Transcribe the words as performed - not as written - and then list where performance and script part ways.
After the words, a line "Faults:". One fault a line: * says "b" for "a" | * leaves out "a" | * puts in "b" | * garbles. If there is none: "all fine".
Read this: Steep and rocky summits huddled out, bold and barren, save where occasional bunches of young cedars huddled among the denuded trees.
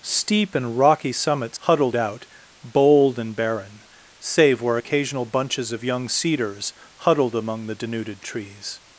Steep and rocky summits huddled out, bold and barren, save where occasional bunches of young cedars huddled among the denuded trees.
Faults:
all fine